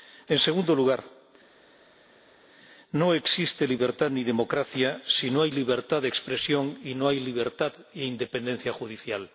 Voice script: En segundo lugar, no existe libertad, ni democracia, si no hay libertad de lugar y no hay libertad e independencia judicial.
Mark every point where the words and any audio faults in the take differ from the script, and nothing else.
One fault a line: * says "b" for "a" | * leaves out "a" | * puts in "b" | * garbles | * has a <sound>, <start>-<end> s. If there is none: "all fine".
* says "expresión" for "lugar"